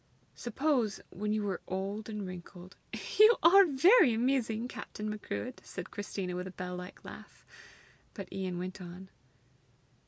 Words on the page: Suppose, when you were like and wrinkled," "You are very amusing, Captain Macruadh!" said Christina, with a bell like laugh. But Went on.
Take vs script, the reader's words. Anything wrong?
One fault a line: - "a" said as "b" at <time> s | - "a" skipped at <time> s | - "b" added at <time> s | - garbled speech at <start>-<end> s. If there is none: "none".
- "like" said as "old" at 1.7 s
- "Ian" added at 8.3 s